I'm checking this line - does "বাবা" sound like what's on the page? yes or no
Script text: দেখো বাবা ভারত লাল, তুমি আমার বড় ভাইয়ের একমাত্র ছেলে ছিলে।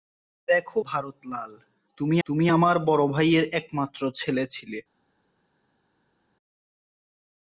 no